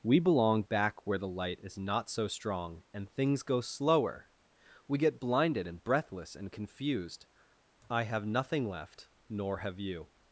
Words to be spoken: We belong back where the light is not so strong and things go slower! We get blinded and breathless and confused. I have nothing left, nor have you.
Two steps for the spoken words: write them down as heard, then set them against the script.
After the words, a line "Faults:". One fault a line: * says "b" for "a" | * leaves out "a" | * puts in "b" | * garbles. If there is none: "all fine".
We belong back where the light is not so strong and things go slower! We get blinded and breathless and confused. I have nothing left, nor have you.
Faults:
all fine